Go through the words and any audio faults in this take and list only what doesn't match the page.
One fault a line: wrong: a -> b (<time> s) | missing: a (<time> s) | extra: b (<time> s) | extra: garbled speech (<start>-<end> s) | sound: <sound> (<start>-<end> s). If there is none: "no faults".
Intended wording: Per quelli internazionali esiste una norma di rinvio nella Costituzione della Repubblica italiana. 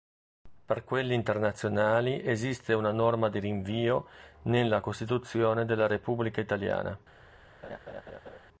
sound: laugh (7.6-8.4 s)